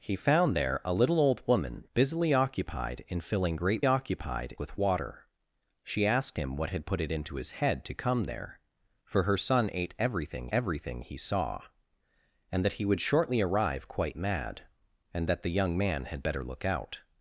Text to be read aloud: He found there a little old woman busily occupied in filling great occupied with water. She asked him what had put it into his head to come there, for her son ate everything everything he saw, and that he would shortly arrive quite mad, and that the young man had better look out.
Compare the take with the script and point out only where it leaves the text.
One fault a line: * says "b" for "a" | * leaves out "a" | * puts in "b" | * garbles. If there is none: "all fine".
all fine